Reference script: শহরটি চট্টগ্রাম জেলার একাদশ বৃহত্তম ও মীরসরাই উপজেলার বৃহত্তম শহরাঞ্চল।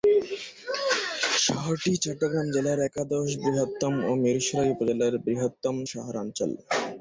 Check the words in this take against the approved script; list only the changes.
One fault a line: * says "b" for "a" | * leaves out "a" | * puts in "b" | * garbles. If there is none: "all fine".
all fine